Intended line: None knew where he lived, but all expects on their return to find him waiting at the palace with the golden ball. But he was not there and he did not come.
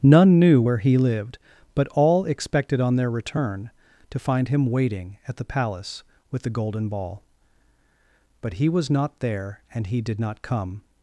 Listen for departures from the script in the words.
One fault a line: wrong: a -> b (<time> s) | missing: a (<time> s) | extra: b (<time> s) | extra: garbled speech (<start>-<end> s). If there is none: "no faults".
wrong: expects -> expected (2.2 s)